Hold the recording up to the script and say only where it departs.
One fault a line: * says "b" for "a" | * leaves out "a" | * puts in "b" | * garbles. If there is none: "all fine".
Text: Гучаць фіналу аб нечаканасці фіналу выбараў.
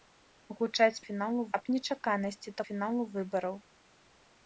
all fine